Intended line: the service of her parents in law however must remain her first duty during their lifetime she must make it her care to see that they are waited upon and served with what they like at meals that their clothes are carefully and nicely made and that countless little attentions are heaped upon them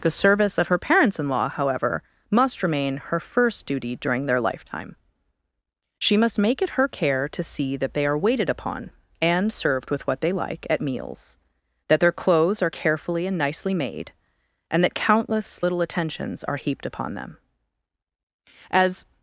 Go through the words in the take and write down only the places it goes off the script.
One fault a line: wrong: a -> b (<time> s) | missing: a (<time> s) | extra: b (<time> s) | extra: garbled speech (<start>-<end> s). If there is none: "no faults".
extra: as (18.7 s)